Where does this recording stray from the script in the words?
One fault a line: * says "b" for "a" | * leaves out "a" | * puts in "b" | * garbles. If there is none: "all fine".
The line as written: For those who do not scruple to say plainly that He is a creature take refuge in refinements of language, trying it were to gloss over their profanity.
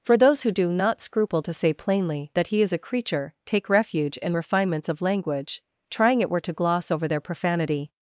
all fine